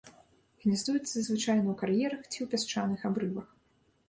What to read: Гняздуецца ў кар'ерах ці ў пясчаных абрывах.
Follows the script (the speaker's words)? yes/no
no